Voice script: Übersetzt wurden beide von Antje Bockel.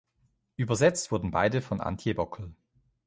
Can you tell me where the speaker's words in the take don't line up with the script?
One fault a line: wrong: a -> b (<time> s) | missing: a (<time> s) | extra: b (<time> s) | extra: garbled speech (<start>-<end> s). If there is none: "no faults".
no faults